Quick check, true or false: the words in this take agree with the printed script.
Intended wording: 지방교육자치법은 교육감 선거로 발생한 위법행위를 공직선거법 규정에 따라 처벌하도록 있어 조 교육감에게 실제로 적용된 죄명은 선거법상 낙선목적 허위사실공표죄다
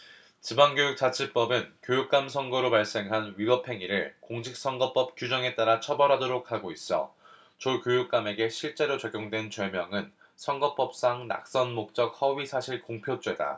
false